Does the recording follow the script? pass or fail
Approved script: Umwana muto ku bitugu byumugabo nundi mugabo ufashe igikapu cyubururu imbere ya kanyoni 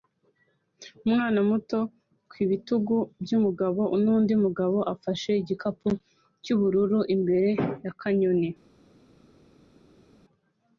pass